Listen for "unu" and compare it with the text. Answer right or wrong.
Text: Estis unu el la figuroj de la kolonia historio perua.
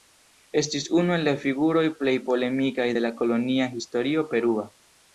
right